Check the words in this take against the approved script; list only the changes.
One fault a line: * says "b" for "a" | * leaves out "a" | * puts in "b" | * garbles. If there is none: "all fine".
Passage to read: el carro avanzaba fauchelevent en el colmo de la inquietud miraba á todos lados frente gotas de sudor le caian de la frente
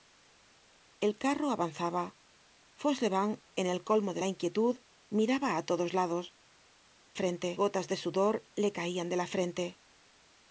all fine